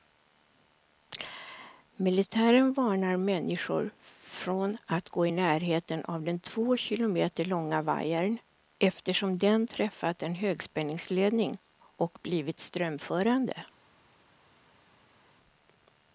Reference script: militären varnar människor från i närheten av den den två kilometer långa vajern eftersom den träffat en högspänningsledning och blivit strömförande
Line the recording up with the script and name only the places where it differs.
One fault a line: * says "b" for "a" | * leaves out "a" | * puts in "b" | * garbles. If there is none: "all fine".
* puts in "att gå"
* leaves out "den"